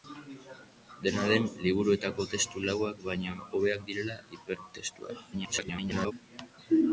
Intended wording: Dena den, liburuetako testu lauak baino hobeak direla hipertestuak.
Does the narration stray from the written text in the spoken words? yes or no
yes